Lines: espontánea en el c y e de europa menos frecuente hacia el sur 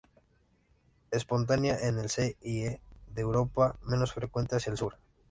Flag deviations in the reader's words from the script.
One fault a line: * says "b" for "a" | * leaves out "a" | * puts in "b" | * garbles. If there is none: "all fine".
all fine